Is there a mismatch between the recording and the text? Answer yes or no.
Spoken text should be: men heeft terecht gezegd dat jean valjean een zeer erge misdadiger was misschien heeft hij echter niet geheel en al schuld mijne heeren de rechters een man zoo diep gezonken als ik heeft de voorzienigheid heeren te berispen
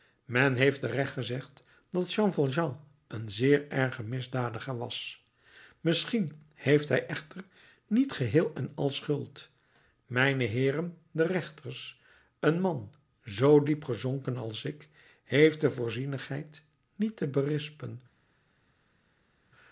yes